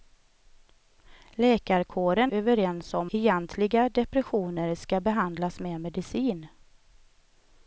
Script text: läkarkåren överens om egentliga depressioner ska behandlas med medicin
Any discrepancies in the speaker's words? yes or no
no